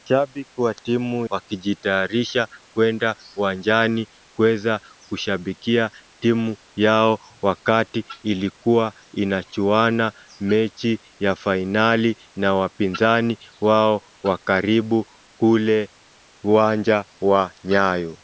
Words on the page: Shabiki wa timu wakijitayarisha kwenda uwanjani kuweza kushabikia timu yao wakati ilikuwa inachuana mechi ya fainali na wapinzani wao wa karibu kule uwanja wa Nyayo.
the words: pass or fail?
pass